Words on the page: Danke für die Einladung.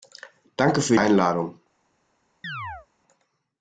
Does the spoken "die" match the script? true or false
false